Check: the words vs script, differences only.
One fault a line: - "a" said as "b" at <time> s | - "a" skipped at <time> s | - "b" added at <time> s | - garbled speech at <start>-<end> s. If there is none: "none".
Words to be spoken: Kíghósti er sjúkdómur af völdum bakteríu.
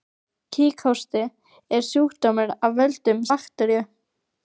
none